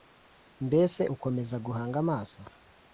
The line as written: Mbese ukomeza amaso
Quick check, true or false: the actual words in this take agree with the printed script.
false